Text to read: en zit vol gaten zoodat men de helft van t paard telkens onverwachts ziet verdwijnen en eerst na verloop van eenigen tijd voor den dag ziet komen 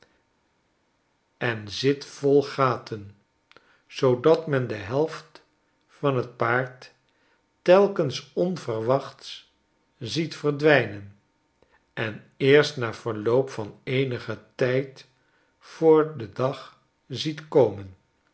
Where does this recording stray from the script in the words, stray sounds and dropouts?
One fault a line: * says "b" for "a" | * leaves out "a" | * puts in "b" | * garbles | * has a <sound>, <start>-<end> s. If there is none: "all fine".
all fine